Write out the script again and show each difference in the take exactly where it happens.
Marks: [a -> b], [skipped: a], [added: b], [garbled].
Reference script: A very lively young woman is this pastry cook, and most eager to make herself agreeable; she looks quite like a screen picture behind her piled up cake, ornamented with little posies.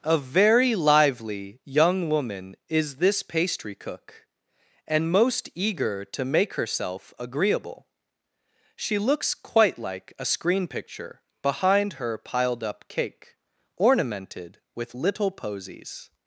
A very lively young woman is this pastry cook, and most eager to make herself agreeable; she looks quite like a screen picture behind her piled up cake, ornamented with little posies.